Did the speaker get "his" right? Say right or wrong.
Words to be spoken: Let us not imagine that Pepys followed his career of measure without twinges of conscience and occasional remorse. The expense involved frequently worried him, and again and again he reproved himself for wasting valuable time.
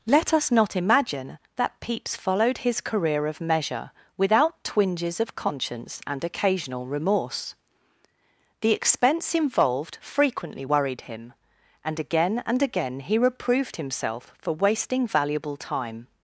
right